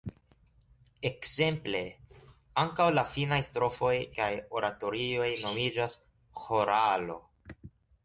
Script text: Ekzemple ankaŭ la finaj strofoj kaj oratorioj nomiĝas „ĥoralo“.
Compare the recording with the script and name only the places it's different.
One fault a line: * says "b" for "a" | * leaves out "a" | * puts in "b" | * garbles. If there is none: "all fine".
all fine